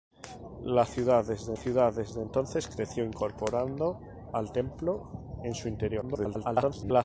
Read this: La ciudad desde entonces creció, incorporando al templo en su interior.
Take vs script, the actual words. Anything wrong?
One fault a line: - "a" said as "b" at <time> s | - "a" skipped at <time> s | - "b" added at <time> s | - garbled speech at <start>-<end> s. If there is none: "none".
- "ciudad desde" added at 1.6 s
- garbled speech at 6.0-7.0 s